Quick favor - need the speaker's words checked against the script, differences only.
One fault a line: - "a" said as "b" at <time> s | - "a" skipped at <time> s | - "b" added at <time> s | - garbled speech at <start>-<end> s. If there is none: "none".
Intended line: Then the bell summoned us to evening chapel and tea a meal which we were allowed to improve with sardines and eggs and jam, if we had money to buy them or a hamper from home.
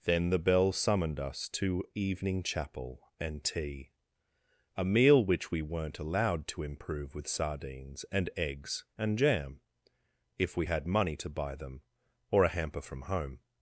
- "were" said as "weren't" at 5.6 s